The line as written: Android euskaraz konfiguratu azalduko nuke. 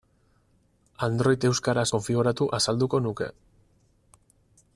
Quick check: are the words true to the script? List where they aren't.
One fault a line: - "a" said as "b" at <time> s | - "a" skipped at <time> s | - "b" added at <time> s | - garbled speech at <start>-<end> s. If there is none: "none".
none